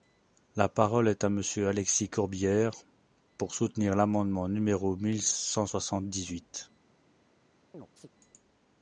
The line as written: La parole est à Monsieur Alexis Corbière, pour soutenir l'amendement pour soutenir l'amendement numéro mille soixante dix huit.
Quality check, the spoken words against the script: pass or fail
fail